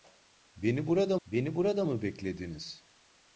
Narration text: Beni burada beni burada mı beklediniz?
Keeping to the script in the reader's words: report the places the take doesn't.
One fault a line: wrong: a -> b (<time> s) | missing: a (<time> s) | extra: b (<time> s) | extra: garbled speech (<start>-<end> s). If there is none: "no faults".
no faults